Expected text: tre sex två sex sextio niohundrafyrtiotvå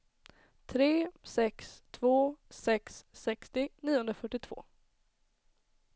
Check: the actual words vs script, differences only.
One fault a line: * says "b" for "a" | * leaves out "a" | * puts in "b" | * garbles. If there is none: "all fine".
all fine